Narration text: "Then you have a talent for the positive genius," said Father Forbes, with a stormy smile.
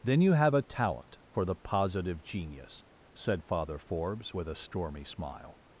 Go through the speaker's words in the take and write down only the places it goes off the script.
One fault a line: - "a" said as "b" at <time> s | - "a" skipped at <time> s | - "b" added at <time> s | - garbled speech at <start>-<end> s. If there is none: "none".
none